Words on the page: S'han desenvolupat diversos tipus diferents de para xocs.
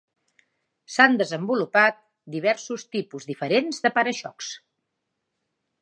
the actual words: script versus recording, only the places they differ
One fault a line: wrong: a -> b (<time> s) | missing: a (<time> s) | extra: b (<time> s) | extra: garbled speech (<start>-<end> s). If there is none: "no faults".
no faults